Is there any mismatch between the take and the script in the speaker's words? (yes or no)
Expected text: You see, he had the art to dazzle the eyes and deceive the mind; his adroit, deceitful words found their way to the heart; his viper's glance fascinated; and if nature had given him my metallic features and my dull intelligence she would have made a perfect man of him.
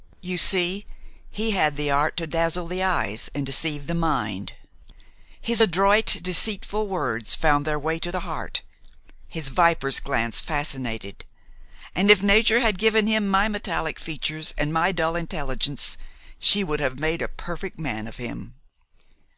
no